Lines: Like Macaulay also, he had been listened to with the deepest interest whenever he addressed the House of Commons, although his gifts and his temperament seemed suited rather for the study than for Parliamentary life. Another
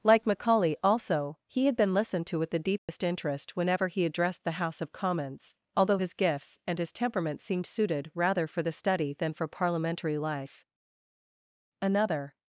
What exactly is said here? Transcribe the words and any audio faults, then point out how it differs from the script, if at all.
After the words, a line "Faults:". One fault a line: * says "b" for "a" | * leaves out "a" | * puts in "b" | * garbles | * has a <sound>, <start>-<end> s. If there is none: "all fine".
Like Macaulay also, he had been listened to with the deepest interest whenever he addressed the House of Commons, although his gifts and his temperament seemed suited rather for the study than for Parliamentary life. Another
Faults:
* has a dropout, 2.8-2.9 s